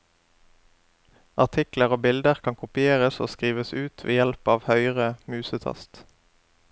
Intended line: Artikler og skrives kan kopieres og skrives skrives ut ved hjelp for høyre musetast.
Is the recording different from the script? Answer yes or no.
yes